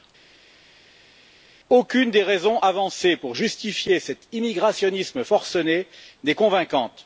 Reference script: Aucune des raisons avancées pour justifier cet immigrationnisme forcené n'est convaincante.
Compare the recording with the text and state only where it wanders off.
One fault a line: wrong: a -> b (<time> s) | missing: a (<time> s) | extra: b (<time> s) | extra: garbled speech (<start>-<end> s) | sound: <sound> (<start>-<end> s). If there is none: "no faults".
no faults